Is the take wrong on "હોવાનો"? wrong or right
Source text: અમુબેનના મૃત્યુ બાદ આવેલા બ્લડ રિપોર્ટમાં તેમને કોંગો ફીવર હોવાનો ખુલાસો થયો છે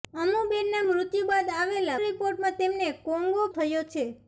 wrong